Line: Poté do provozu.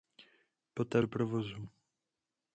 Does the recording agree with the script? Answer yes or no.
yes